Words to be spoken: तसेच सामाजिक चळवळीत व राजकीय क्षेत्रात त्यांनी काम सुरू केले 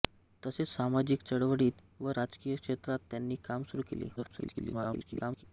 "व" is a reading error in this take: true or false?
false